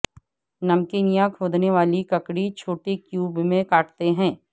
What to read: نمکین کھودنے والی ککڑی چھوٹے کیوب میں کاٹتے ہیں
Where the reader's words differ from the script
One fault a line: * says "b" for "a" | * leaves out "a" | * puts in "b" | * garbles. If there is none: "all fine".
* puts in "یا"